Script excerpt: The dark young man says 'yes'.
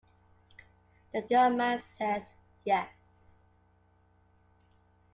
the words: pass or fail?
fail